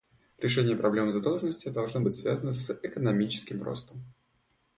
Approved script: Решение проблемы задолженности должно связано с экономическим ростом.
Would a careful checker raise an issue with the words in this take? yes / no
yes